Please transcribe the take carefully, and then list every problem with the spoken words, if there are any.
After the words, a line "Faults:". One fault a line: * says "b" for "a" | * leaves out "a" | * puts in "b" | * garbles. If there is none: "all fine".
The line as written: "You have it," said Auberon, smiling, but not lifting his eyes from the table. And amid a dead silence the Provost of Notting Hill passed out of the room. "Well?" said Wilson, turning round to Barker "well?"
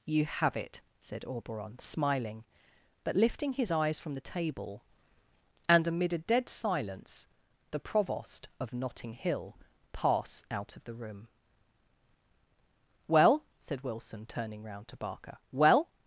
"You have it," said Auberon, smiling, but lifting his eyes from the table. And amid a dead silence the Provost of Notting Hill pass out of the room. "Well?" said Wilson, turning round to Barker "well?"
Faults:
* leaves out "not"
* says "pass" for "passed"